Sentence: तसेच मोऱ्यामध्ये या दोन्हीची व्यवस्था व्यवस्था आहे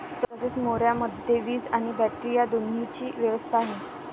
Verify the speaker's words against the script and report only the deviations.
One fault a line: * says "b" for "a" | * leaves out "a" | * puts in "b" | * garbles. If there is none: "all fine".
* puts in "वीज आणि बॅटरी"
* leaves out "व्यवस्था"